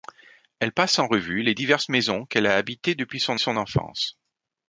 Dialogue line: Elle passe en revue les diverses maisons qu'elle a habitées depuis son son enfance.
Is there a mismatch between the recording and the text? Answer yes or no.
no